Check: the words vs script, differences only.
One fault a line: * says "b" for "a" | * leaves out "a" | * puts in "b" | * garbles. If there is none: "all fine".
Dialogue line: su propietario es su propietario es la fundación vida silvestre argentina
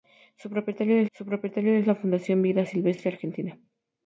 all fine